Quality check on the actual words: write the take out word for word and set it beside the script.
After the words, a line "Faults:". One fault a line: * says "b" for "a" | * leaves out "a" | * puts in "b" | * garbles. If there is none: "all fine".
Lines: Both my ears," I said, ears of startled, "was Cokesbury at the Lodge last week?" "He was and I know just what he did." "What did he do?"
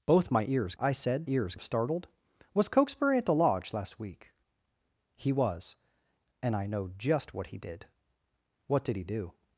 Both my ears," I said, ears of startled, "was Cokesbury at the Lodge last week?" "He was and I know just what he did." "What did he do?"
Faults:
all fine